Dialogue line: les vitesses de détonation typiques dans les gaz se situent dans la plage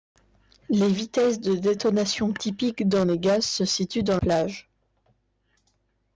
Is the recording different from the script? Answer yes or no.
yes